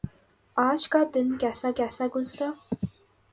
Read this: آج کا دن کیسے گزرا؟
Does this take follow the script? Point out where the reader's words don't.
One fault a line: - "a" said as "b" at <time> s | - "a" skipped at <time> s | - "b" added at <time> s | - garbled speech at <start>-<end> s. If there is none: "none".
- "کیسے" added at 1.7 s